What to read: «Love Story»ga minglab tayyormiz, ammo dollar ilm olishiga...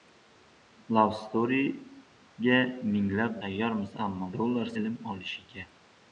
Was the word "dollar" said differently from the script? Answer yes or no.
no